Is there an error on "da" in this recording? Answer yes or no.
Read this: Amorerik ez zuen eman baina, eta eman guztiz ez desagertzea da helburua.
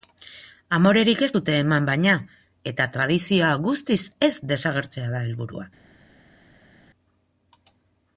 no